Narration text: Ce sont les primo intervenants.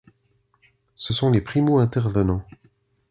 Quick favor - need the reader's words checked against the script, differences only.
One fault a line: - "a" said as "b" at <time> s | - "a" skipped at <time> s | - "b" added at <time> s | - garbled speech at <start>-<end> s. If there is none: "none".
none